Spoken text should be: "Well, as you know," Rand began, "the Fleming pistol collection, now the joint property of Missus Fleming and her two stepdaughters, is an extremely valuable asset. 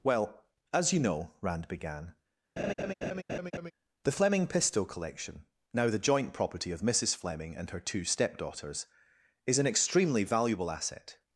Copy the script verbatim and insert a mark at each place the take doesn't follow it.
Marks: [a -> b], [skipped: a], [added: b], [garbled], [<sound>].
"Well, as you know," Rand began, [laugh] "the Fleming pistol collection, now the joint property of Missus Fleming and her two stepdaughters, is an extremely valuable asset.